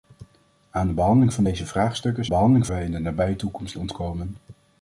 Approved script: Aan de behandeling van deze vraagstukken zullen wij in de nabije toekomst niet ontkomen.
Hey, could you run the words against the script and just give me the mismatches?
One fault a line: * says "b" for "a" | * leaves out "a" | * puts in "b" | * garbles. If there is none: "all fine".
* says "behandeling" for "zullen"
* leaves out "niet"